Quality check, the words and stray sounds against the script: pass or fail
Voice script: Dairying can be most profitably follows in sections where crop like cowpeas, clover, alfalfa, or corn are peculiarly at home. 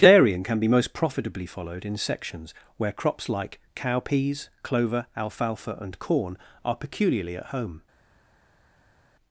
fail